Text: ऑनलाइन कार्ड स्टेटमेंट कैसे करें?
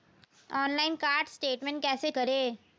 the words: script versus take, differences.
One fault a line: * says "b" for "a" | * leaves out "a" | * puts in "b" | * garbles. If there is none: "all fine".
all fine